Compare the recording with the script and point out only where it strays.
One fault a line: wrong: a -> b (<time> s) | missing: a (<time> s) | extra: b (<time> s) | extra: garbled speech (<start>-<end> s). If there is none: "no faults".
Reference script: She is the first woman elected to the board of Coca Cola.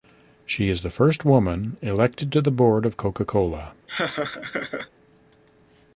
no faults